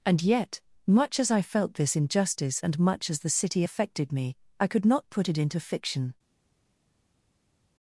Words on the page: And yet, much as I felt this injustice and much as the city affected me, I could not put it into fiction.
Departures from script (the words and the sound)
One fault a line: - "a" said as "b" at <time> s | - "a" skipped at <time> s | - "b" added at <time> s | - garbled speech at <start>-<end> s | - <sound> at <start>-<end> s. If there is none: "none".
none